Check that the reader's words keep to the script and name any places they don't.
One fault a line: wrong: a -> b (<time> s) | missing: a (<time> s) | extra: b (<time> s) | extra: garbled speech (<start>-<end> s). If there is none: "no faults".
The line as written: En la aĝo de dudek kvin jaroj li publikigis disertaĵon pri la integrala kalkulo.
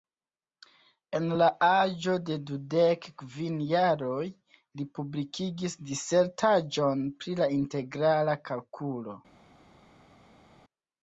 no faults